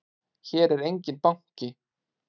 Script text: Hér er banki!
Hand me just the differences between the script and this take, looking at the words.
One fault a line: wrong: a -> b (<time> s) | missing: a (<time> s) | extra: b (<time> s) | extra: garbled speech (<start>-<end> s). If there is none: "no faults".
extra: enginn (0.9 s)